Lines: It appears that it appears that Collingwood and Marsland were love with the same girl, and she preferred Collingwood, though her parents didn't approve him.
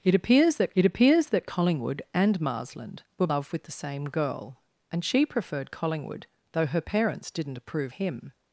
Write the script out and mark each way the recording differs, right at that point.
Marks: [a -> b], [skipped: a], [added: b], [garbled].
It appears that it appears that Collingwood and Marsland were love with the same girl, and she preferred Collingwood, though her parents didn't approve him.